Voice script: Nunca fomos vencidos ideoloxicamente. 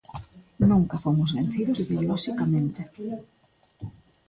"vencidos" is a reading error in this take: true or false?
false